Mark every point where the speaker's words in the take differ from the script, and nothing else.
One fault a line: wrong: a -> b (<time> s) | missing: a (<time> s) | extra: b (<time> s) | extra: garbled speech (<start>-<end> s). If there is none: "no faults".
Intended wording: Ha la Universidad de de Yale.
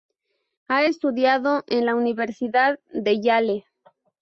extra: estudiado en (0.8 s)
missing: de (3.2 s)